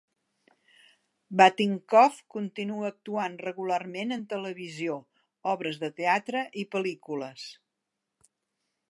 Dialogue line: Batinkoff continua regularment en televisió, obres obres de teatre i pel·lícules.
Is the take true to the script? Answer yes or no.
no